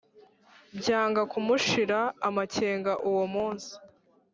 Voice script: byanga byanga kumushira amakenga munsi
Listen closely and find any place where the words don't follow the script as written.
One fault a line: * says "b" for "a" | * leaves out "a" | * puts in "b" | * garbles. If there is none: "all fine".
* leaves out "byanga"
* puts in "uwo"